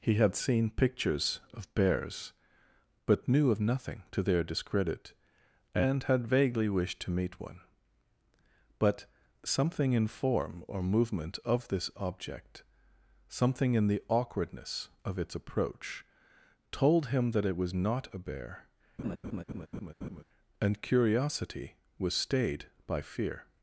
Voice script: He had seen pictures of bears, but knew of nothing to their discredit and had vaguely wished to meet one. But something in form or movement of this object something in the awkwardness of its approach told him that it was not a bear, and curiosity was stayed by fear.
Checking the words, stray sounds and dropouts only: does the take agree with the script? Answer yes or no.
no